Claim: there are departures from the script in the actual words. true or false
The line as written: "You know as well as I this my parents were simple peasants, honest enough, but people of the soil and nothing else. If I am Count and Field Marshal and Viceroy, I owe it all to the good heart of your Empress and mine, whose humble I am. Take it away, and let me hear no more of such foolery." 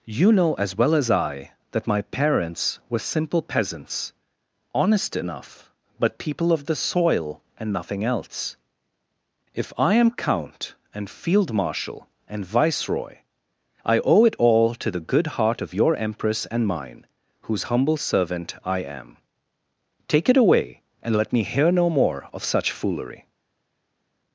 true